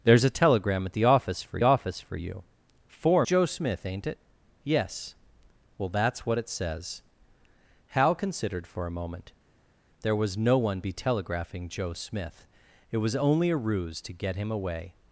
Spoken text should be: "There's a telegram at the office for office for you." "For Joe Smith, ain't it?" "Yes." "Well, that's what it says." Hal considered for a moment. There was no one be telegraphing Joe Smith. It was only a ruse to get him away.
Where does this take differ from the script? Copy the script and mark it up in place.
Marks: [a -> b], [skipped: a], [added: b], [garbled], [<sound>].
"There's a telegram at the office for office for you." "For Joe Smith, ain't it?" "Yes." "Well, that's what it says." Hal considered for a moment. There was no one be telegraphing Joe Smith. It was only a ruse to get him away.